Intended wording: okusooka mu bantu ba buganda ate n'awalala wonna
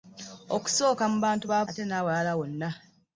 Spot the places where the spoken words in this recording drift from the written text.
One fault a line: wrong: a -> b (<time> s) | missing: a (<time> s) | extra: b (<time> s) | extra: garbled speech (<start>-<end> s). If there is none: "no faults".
missing: buganda (1.6 s)